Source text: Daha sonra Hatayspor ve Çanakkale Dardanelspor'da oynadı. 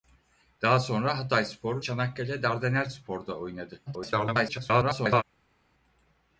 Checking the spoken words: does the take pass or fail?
fail